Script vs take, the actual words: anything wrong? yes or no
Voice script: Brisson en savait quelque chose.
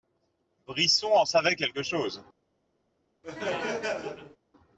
no